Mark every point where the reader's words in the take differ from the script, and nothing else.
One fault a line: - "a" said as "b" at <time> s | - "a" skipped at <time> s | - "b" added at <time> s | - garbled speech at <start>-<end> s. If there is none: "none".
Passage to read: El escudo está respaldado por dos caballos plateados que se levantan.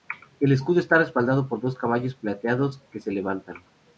none